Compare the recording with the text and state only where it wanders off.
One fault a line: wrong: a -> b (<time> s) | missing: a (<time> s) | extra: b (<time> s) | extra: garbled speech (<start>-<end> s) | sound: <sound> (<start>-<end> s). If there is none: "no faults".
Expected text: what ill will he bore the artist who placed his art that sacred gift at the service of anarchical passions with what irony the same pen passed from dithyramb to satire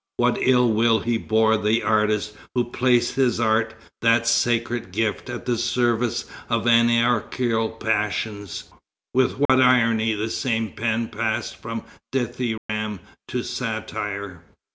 sound: dropout (9.5-9.5 s)
sound: dropout (12.6-12.7 s)